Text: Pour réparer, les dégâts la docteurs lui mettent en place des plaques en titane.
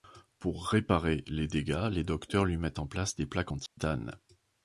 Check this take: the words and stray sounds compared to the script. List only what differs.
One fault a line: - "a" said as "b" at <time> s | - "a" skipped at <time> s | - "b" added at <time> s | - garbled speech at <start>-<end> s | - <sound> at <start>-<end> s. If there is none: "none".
- "la" said as "les" at 1.9 s
- dropout at 3.7-3.8 s